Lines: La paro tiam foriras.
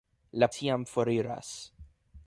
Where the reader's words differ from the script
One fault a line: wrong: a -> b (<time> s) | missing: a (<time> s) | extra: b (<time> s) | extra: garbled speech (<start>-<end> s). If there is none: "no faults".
missing: paro (0.5 s)